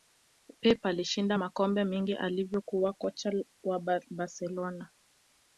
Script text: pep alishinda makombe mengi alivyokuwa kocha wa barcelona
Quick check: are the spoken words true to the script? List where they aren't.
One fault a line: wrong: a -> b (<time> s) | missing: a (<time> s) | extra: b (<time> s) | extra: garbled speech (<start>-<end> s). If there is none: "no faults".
no faults